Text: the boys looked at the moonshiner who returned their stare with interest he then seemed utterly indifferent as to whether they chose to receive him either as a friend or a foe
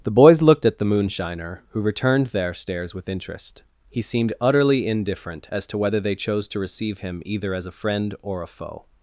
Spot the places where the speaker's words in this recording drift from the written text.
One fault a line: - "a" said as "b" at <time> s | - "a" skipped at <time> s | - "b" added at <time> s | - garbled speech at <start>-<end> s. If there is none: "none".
- "stare" said as "stares" at 2.5 s
- "then" skipped at 4.0 s